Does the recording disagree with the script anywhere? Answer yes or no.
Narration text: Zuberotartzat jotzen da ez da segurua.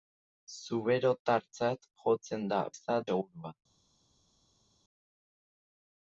no